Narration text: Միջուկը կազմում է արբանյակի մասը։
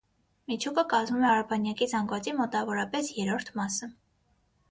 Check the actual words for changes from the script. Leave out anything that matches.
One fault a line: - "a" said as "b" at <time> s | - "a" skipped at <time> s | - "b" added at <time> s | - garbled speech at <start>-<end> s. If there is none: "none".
- "զանգվածի մոտավորապես երրորդ" added at 1.9 s